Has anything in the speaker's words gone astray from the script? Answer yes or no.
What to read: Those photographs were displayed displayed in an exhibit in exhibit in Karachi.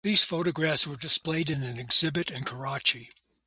yes